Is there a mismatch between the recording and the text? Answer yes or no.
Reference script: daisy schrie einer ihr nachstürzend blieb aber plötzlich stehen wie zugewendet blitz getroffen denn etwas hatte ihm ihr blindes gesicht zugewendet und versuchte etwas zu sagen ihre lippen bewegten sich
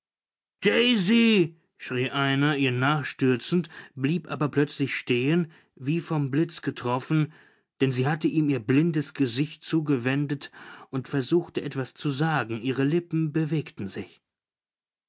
yes